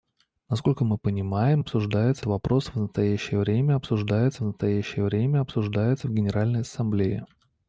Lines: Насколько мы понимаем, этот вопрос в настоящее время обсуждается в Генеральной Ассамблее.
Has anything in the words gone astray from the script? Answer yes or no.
yes